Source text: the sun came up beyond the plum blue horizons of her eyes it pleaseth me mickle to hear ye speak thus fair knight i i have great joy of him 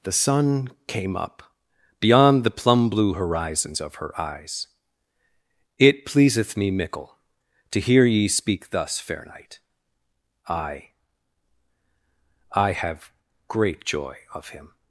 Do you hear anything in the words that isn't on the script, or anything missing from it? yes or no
no